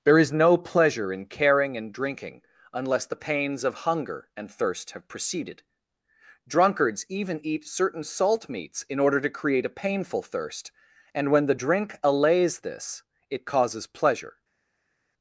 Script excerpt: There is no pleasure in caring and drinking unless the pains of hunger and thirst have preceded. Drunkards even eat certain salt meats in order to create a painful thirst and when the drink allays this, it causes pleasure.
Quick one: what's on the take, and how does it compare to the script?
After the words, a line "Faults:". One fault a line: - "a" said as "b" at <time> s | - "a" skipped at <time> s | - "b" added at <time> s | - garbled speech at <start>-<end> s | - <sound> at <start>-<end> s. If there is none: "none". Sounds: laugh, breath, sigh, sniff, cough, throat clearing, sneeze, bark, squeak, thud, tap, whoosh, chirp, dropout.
There is no pleasure in caring and drinking unless the pains of hunger and thirst have preceded. Drunkards even eat certain salt meats in order to create a painful thirst and when the drink allays this, it causes pleasure.
Faults:
none